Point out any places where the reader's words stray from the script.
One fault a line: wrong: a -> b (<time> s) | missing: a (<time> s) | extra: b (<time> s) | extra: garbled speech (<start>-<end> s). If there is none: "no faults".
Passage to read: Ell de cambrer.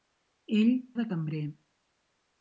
no faults